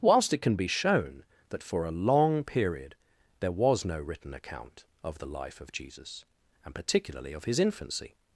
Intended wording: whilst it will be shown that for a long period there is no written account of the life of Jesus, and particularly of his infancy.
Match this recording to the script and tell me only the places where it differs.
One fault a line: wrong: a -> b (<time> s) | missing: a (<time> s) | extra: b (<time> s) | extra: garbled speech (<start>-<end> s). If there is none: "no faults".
wrong: will -> can (0.4 s)
wrong: is -> was (3.5 s)